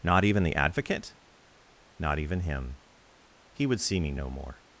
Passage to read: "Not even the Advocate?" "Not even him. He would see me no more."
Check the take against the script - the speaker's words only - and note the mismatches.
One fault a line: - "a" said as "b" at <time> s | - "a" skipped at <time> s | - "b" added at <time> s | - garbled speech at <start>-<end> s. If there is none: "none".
none